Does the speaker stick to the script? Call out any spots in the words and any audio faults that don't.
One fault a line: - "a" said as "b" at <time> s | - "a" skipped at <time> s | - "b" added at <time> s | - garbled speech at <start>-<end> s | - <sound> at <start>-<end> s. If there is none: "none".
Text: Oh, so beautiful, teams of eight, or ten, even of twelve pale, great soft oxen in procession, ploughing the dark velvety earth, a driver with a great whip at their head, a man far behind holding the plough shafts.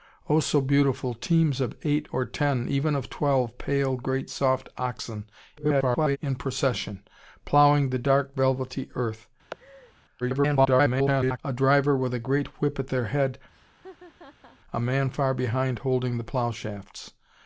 - garbled speech at 5.6-6.2 s
- laugh at 9.5-9.9 s
- garbled speech at 10.2-11.4 s
- laugh at 13.5-14.6 s